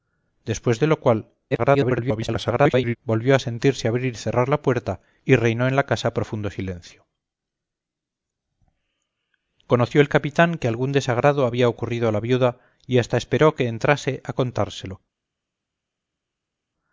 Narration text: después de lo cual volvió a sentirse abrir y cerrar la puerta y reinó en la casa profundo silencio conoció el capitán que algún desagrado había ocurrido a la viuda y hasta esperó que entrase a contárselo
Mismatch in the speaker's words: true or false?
true